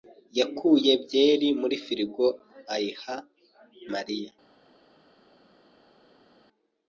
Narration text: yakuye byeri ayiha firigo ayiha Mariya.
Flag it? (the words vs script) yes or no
yes